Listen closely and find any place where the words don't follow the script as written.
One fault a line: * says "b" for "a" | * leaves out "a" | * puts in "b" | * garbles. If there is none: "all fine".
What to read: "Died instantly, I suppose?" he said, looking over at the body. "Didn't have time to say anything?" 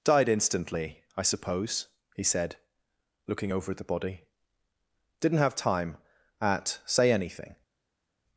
* says "at" for "to"